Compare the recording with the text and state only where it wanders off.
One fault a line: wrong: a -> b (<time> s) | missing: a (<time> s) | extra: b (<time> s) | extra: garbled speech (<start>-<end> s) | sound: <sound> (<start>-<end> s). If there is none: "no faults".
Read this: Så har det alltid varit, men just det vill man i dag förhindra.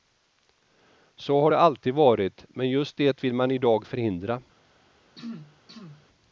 sound: throat clearing (5.1-6.1 s)